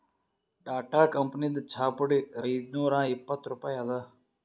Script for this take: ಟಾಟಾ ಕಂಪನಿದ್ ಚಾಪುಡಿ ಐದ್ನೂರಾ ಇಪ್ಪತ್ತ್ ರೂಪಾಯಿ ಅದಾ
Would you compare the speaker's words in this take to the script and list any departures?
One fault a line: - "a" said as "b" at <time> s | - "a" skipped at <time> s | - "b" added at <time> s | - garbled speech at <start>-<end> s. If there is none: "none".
none